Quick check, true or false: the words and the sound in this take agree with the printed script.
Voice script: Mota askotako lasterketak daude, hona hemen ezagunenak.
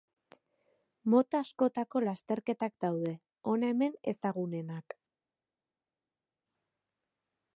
true